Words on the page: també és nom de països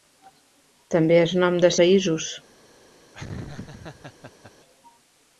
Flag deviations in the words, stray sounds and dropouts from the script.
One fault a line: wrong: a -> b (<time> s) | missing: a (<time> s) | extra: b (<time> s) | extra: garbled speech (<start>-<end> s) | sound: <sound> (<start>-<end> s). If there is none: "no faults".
sound: laugh (3.1-4.5 s)